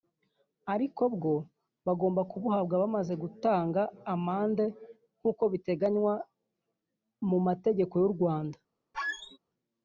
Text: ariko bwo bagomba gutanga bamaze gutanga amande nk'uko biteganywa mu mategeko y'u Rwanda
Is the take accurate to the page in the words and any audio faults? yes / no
no